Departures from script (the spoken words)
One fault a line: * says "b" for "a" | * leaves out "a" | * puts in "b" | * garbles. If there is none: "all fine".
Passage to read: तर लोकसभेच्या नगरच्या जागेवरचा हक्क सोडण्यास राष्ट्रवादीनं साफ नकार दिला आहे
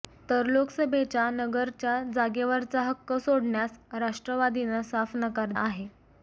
* leaves out "दिला"